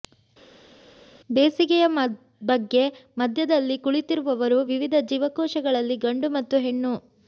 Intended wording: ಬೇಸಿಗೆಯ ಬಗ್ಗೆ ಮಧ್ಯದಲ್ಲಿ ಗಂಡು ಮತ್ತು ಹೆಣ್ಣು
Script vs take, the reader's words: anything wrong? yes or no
yes